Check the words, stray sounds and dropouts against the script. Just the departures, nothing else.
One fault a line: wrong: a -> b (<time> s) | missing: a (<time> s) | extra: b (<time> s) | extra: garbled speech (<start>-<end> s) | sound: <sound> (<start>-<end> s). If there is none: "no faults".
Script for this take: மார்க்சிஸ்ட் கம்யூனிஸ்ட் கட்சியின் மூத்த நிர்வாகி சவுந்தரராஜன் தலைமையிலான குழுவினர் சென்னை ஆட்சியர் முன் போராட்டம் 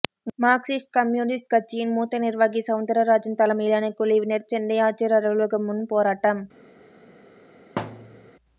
extra: அலுவலகம் (5.2 s)
sound: thud (7.8-8.3 s)